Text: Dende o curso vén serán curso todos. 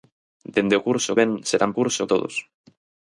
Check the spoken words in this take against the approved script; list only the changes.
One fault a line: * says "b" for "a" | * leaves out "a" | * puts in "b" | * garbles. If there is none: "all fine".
all fine